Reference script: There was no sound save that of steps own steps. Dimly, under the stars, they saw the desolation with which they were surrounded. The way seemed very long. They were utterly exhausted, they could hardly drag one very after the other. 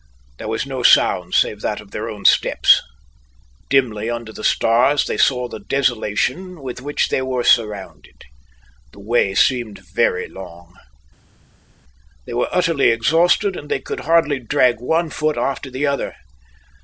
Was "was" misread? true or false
false